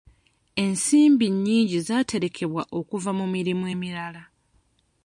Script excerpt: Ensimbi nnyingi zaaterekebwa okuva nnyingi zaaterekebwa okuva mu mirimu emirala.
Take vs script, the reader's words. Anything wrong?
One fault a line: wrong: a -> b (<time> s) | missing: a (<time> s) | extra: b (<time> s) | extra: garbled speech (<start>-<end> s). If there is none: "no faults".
missing: nnyingi zaaterekebwa okuva (3.1 s)